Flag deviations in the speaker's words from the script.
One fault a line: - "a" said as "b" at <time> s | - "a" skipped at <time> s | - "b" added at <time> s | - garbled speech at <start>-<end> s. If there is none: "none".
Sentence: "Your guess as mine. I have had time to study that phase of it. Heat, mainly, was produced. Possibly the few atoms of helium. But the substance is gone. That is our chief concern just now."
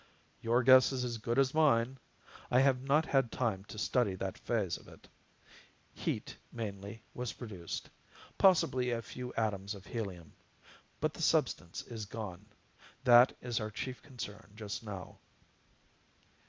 - "is" added at 0.9 s
- "good as" added at 1.2 s
- "not" added at 2.8 s
- "the" said as "a" at 8.9 s